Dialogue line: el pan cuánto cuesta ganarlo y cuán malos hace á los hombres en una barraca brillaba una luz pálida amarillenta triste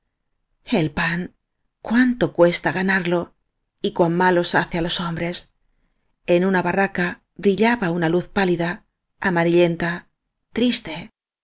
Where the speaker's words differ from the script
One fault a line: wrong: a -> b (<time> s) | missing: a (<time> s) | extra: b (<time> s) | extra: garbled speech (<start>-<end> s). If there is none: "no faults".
no faults